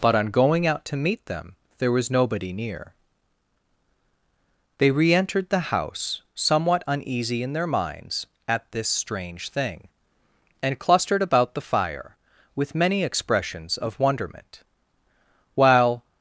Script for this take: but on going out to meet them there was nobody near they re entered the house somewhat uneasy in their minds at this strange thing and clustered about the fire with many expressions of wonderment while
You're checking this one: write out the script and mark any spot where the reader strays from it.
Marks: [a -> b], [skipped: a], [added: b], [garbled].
but on going out to meet them there was nobody near they re entered the house somewhat uneasy in their minds at this strange thing and clustered about the fire with many expressions of wonderment while